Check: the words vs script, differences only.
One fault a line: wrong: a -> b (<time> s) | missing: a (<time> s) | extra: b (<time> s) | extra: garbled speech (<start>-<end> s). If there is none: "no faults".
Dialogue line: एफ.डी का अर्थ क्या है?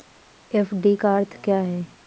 no faults